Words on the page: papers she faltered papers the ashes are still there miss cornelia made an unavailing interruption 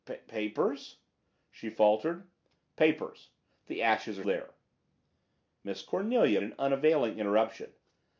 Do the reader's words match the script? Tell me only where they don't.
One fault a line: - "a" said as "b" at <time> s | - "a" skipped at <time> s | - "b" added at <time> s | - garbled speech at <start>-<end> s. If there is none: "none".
- "still" skipped at 4.2 s
- "made" skipped at 6.4 s